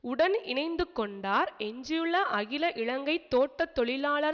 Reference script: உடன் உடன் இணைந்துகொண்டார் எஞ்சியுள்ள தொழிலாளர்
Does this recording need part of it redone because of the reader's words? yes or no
yes